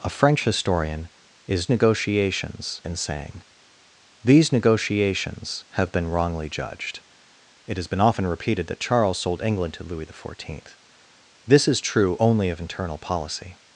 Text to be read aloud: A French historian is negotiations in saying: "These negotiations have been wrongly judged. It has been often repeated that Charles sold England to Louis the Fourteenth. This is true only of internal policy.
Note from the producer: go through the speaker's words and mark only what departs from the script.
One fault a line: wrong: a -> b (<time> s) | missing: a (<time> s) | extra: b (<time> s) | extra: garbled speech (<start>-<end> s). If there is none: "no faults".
no faults